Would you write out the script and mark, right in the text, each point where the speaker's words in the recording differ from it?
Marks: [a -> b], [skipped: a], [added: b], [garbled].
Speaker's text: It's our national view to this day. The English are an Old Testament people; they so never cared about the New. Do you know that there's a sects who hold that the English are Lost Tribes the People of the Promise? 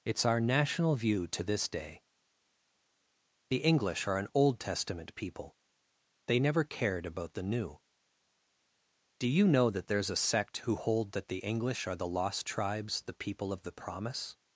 It's our national view to this day. The English are an Old Testament people; they [skipped: so] never cared about the New. Do you know that there's a [sects -> sect] who hold that the English are [added: the] Lost Tribes the People of the Promise?